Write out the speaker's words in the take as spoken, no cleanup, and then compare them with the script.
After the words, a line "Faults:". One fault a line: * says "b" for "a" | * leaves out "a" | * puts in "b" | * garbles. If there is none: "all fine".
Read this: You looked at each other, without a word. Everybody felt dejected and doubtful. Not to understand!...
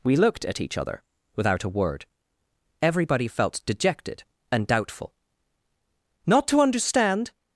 We looked at each other, without a word. Everybody felt dejected and doubtful. Not to understand!...
Faults:
* says "We" for "You"